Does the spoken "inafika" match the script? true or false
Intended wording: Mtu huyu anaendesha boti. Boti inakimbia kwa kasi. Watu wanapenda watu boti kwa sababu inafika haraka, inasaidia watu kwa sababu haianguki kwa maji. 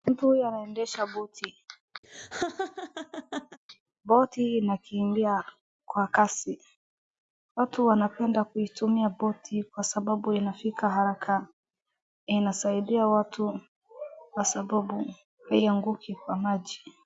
true